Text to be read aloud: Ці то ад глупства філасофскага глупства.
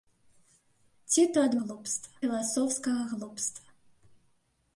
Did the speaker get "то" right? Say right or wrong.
right